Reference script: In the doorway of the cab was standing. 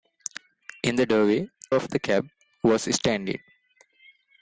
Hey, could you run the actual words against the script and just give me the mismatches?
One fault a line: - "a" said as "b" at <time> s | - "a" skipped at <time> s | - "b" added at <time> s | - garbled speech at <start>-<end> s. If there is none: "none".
none